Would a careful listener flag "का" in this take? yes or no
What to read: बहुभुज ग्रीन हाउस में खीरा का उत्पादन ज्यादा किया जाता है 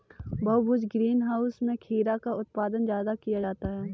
no